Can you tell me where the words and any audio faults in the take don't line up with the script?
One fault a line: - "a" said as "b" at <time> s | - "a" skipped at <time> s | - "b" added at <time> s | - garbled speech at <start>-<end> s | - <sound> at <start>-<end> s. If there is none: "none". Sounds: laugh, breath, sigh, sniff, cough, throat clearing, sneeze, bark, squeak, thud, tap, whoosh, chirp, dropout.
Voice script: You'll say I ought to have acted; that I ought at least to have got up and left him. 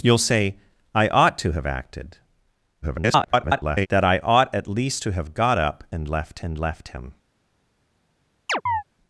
- garbled speech at 2.8-3.9 s
- "and left" added at 6.4 s
- chirp at 8.5-8.8 s